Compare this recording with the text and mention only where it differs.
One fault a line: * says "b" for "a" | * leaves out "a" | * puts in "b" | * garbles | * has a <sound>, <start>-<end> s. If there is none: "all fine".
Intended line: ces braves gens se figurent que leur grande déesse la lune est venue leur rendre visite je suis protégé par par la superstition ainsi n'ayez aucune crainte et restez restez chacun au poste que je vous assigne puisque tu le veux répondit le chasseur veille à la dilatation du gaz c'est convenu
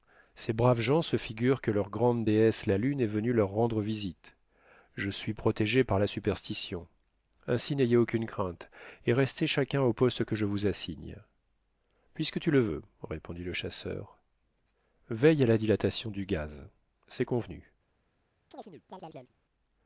* leaves out "par"
* leaves out "restez"
* has a chirp, 18.5-19.3 s